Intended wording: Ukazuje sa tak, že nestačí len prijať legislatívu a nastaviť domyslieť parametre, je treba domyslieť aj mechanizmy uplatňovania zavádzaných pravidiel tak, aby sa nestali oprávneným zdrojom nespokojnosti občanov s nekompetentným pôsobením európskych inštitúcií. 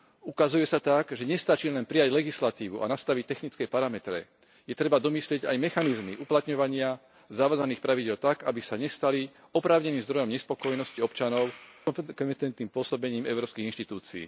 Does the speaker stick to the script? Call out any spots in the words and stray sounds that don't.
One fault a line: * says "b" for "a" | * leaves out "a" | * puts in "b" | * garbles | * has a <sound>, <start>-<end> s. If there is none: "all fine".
* says "technické" for "domyslieť"